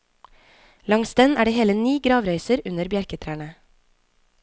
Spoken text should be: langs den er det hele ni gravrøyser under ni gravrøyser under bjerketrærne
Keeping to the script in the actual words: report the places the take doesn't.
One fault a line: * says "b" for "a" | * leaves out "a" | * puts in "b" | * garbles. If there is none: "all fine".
* leaves out "ni gravrøyser under"